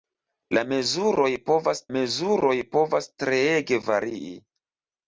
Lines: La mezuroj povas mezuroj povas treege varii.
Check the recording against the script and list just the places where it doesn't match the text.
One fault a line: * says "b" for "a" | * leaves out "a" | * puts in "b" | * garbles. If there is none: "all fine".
all fine